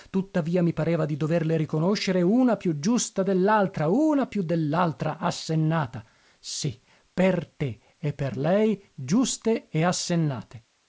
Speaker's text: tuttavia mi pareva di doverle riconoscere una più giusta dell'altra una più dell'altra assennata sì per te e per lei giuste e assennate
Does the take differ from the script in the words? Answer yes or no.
no